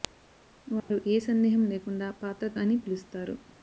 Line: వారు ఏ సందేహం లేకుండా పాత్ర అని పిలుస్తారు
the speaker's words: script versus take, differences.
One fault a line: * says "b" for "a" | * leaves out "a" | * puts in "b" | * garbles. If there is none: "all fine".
all fine